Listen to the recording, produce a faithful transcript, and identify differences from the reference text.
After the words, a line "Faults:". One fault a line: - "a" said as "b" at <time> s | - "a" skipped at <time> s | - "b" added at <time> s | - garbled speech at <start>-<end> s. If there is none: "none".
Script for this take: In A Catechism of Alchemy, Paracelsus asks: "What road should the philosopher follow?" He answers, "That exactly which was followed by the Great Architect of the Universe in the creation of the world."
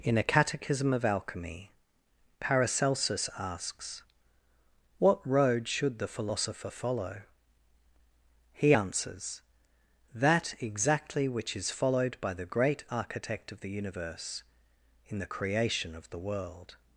In A Catechism of Alchemy, Paracelsus asks: "What road should the philosopher follow?" He answers, "That exactly which is followed by the Great Architect of the Universe in the creation of the world."
Faults:
- "was" said as "is" at 11.5 s